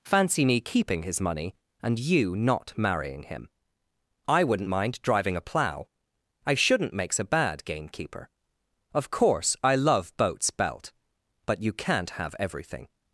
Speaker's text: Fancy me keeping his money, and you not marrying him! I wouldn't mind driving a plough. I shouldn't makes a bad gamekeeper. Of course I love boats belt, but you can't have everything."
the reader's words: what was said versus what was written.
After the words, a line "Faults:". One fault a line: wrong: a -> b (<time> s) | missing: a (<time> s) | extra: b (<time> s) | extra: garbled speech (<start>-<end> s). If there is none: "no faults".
Fancy me keeping his money, and you not marrying him! I wouldn't mind driving a plough. I shouldn't makes a bad gamekeeper. Of course I love boats belt, but you can't have everything."
Faults:
no faults